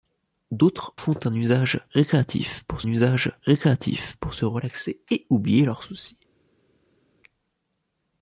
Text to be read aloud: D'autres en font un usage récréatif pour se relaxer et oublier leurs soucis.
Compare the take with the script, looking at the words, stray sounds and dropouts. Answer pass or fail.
fail